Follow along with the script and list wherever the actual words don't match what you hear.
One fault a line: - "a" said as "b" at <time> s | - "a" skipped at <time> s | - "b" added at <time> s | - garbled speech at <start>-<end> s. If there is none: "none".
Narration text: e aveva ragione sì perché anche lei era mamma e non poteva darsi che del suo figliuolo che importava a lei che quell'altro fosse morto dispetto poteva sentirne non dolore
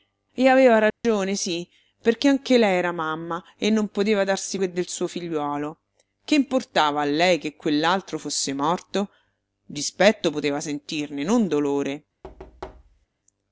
none